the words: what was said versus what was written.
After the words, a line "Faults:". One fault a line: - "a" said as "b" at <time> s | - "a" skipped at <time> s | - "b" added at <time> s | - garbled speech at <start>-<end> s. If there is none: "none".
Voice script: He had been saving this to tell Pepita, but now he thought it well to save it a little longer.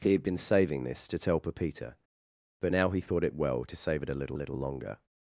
He had been saving this to tell Pepita, but now he thought it well to save it a little little longer.
Faults:
- "little" added at 4.4 s